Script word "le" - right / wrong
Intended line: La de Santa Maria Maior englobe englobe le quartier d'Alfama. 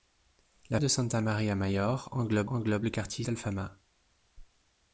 right